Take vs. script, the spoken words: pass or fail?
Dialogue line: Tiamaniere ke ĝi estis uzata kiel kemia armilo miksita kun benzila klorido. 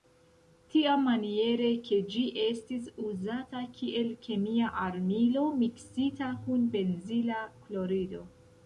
pass